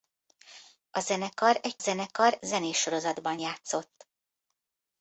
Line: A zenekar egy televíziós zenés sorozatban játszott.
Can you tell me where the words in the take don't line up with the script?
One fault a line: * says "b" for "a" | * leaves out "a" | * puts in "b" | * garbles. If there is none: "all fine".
* says "zenekar" for "televíziós"